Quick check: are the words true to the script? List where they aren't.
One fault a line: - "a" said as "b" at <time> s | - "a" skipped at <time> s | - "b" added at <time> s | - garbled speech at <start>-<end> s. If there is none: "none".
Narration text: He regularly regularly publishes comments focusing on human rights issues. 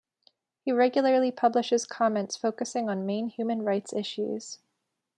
- "regularly" skipped at 1.3 s
- "main" added at 3.0 s